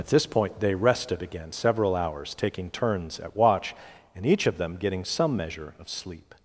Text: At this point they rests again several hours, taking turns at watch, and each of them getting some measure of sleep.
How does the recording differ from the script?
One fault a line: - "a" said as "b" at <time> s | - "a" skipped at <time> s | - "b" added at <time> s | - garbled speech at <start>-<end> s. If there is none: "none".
- "rests" said as "rested" at 0.7 s